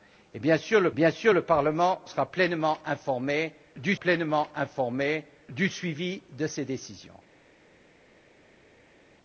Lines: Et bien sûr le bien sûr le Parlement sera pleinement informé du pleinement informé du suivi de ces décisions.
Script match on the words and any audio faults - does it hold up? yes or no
yes